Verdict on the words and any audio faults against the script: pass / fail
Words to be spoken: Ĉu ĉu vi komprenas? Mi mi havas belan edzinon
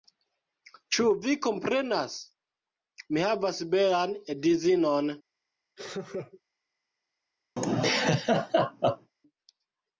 fail